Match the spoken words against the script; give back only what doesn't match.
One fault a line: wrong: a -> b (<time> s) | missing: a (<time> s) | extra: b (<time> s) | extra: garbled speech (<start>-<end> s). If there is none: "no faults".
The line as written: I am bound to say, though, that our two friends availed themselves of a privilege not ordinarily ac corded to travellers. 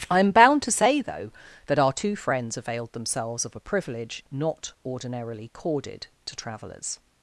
missing: ac (5.5 s)